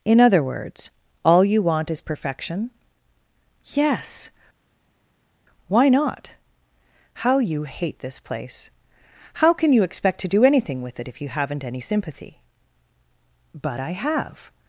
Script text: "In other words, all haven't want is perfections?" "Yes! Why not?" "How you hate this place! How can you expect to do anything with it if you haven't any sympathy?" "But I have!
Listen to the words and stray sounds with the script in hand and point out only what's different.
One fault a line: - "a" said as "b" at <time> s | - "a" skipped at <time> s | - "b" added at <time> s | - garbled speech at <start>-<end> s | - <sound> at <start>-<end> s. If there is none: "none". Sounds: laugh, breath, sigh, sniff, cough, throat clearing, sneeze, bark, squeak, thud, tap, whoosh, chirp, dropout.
- "haven't" said as "you" at 1.4 s
- "perfections" said as "perfection" at 2.0 s